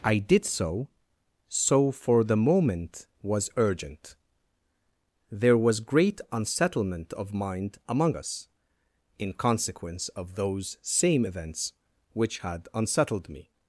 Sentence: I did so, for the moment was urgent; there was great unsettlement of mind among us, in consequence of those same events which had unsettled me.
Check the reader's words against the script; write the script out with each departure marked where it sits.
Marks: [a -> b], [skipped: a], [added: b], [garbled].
I did so, [added: so] for the moment was urgent; there was great unsettlement of mind among us, in consequence of those same events which had unsettled me.